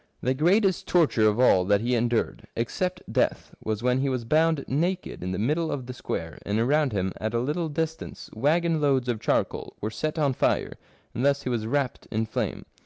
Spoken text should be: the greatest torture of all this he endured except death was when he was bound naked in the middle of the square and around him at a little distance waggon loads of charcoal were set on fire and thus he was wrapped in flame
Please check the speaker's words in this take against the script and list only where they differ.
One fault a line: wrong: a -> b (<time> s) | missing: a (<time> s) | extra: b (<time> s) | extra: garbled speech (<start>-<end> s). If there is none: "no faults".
wrong: this -> that (1.6 s)